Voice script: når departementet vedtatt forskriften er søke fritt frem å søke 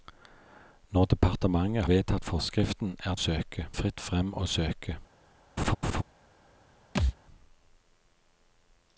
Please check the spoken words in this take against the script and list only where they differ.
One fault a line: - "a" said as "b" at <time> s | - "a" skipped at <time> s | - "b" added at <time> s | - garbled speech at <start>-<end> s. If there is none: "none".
none